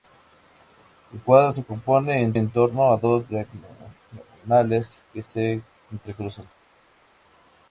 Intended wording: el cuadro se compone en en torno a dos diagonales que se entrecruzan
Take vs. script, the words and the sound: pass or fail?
pass